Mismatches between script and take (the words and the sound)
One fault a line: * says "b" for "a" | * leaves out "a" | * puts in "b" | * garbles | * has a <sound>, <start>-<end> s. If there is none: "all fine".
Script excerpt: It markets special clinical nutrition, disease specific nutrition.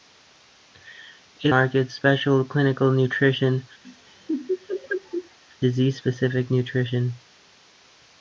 * has a laugh, 3.8-5.4 s